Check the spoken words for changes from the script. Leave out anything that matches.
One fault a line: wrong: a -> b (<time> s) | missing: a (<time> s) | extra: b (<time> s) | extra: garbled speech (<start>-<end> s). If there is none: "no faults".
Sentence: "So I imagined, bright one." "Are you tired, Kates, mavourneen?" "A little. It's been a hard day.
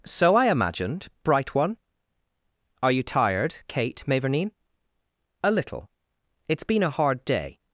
wrong: Kates -> Kate (3.7 s)